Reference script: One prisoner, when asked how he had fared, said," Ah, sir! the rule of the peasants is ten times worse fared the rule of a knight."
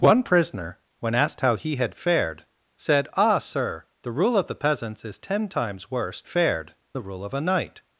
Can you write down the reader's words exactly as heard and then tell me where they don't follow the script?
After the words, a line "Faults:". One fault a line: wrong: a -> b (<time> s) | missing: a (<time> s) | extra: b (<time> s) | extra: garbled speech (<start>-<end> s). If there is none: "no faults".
One prisoner, when asked how he had fared, said," Ah, sir! the rule of the peasants is ten times worse fared the rule of a knight."
Faults:
no faults